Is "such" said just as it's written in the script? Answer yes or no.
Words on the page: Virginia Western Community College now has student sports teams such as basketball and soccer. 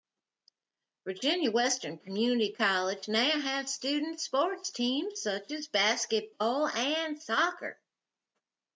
yes